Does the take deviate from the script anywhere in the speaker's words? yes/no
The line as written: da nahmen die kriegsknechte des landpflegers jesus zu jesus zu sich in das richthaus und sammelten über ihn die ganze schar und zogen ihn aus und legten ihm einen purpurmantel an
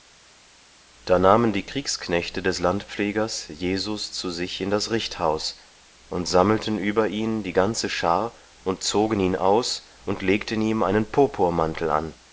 yes